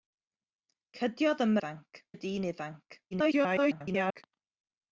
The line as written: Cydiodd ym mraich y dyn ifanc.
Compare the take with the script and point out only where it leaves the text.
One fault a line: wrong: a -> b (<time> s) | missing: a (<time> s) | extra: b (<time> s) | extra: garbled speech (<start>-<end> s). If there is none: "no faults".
wrong: mraich -> ifanc (1.6 s)
extra: garbled speech (3.1-4.2 s)